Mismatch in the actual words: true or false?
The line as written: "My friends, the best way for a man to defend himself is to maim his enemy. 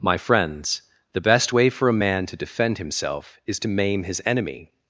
false